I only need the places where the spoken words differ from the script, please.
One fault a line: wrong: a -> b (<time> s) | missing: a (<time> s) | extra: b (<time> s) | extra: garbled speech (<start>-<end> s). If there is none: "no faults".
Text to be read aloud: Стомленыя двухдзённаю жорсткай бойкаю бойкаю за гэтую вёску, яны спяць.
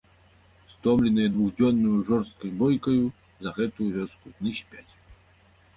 missing: бойкаю (3.0 s)